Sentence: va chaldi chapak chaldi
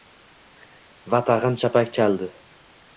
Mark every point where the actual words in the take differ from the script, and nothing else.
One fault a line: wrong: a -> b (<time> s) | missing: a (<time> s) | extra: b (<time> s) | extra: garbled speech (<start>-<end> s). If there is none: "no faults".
wrong: chaldi -> tag‘in (1.3 s)